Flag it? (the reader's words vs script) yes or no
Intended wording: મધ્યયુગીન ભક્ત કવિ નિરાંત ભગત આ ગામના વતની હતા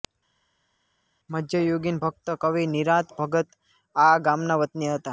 no